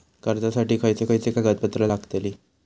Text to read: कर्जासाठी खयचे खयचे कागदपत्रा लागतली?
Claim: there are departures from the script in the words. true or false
false